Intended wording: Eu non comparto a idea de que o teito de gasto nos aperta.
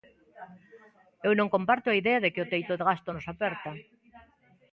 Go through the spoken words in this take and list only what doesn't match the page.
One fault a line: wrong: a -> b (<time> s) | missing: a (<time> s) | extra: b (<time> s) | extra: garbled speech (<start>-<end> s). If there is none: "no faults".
no faults